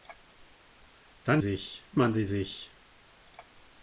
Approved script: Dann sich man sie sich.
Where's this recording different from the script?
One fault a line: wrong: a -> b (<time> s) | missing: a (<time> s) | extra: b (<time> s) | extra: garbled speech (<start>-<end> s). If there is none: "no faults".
no faults